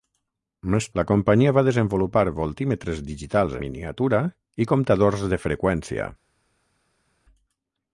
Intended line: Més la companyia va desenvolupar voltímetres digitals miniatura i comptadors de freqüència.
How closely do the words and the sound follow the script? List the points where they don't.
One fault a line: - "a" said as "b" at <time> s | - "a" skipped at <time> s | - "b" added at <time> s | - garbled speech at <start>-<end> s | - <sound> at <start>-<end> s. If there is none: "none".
none